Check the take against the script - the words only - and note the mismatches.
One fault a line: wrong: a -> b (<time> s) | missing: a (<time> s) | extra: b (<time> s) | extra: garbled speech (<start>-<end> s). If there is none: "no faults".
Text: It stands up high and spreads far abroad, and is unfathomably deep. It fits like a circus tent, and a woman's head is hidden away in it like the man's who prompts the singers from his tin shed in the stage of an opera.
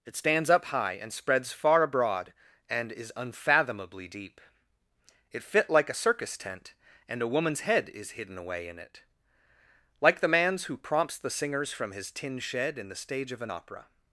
wrong: fits -> fit (5.4 s)